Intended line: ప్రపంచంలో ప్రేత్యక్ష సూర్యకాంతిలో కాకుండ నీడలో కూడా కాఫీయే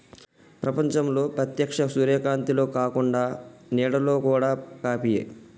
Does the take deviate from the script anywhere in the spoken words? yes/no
no